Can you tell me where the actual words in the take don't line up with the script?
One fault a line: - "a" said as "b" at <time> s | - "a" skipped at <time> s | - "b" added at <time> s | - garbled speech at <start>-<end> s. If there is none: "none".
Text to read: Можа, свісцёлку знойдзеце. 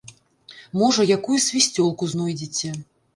- "якую" added at 1.2 s